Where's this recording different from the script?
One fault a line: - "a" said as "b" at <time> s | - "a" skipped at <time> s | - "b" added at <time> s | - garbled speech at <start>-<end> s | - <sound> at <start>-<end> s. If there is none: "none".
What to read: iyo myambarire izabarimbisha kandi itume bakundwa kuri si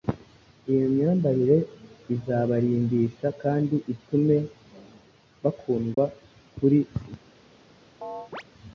- dropout at 5.9-6.0 s
- chirp at 8.0-8.4 s